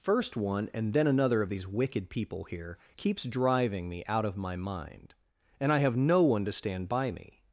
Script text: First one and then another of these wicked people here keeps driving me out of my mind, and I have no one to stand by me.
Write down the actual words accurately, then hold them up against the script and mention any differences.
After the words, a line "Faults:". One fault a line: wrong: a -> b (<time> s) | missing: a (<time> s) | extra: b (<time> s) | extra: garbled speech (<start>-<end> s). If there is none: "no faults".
First one and then another of these wicked people here keeps driving me out of my mind, and I have no one to stand by me.
Faults:
no faults